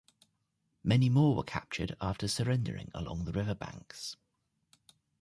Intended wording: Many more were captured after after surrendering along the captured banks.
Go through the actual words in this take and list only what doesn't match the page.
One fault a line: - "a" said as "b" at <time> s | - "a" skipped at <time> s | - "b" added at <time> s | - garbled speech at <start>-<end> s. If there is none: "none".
- "after" skipped at 2.3 s
- "captured" said as "river" at 3.3 s